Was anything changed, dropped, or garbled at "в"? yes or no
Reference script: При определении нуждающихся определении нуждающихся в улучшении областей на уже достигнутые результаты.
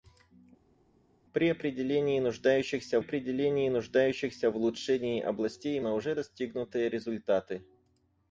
no